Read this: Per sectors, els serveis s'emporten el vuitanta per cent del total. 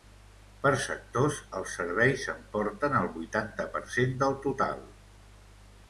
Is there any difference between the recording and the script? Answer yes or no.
no